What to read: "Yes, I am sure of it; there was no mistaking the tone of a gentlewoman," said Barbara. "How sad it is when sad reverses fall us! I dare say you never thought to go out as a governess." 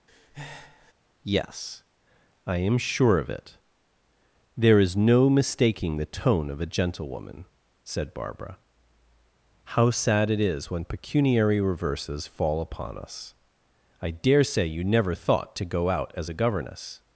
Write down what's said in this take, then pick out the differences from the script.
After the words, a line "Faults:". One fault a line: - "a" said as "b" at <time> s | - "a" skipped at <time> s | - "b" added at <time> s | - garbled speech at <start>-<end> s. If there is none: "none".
"Yes, I am sure of it; there is no mistaking the tone of a gentlewoman," said Barbara. "How sad it is when pecuniary reverses fall upon us! I dare say you never thought to go out as a governess."
Faults:
- "was" said as "is" at 4.8 s
- "sad" said as "pecuniary" at 10.8 s
- "upon" added at 12.6 s